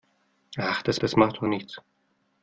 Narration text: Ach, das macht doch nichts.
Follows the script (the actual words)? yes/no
no